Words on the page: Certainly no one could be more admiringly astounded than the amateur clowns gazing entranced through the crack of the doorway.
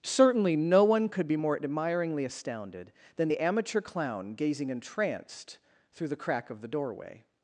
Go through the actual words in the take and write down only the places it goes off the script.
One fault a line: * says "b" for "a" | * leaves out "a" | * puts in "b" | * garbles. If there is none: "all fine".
* says "clown" for "clowns"